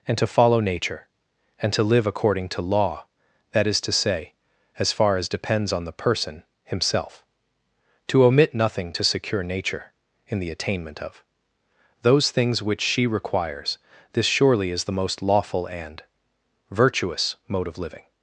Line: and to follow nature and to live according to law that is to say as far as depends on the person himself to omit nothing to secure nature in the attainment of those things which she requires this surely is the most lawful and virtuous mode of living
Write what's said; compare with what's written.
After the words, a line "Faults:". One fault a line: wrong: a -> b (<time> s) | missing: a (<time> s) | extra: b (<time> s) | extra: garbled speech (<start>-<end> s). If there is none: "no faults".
and to follow nature and to live according to law that is to say as far as depends on the person himself to omit nothing to secure nature in the attainment of those things which she requires this surely is the most lawful and virtuous mode of living
Faults:
no faults